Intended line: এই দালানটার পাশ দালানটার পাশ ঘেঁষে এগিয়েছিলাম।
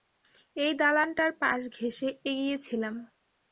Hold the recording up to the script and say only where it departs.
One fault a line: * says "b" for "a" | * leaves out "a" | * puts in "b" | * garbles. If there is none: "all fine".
* leaves out "দালানটার পাশ"